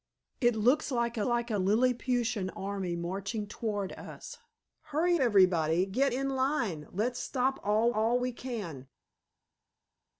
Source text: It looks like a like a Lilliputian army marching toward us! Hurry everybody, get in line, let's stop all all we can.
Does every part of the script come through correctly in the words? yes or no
yes